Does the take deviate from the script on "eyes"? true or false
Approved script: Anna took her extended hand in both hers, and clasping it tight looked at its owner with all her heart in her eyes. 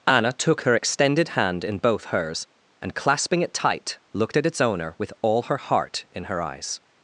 false